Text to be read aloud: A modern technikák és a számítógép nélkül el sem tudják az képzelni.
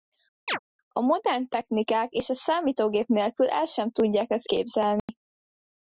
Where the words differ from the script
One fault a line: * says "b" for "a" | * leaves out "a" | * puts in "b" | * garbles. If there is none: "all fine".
all fine